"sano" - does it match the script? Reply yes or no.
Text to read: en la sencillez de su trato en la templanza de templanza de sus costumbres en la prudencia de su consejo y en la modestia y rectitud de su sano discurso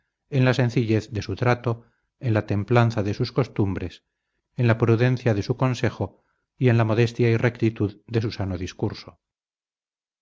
yes